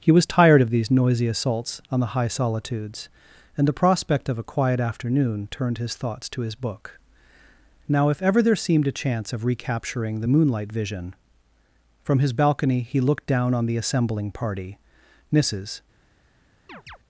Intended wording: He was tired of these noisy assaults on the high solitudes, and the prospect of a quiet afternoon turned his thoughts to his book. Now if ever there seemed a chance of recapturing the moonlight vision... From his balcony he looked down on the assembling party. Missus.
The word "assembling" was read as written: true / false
true